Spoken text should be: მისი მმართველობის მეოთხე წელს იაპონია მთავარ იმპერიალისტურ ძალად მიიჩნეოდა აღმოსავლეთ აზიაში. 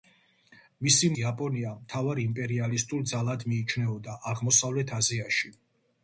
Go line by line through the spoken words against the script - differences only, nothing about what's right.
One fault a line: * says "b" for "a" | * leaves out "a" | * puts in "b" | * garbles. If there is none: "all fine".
* leaves out "მმართველობის მეოთხე წელს"